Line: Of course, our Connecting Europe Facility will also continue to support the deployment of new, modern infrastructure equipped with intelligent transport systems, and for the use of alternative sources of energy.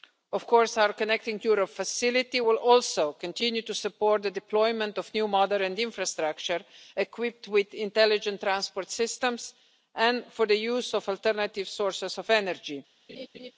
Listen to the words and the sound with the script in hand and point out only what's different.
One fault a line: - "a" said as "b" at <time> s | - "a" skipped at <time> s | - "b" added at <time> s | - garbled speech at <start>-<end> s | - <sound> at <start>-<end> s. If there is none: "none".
- laugh at 13.1-13.5 s